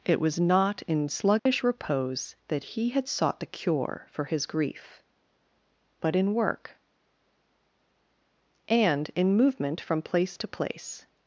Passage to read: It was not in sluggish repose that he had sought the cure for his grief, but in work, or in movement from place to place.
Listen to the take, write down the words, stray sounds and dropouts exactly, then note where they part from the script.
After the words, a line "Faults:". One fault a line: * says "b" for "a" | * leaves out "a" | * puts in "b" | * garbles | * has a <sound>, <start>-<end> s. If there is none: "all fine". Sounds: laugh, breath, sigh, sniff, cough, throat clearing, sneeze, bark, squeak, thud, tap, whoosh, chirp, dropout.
It was not in sluggish repose that he had sought the cure for his grief, but in work, and in movement from place to place.
Faults:
* has a dropout, 1.4-1.5 s
* says "and" for "or"